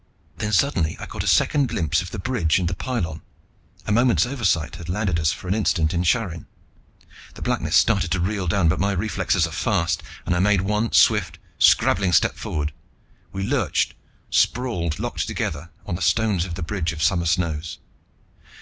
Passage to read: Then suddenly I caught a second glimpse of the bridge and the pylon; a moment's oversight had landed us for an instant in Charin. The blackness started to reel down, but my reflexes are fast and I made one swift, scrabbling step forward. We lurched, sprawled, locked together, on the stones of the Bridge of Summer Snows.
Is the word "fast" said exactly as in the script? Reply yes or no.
yes